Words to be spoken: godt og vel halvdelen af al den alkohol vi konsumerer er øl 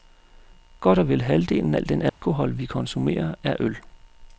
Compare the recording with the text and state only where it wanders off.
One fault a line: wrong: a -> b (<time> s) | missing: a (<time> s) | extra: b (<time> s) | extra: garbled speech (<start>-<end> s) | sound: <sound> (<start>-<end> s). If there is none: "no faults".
missing: af (1.8 s)
sound: dropout (2.1-2.2 s)